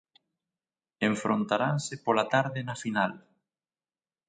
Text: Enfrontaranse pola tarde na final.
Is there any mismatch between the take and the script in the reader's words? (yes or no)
no